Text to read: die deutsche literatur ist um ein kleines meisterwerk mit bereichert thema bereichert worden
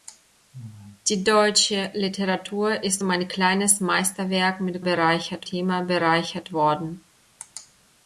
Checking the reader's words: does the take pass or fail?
pass